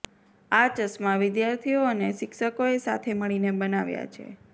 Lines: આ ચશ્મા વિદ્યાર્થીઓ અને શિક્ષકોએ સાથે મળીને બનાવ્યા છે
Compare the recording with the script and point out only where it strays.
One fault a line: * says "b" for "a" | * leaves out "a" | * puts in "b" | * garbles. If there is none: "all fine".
all fine